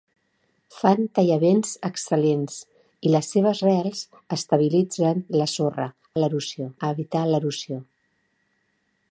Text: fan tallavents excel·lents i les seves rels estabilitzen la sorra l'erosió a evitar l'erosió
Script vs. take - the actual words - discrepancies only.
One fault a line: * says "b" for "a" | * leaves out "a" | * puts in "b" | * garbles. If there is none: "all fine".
all fine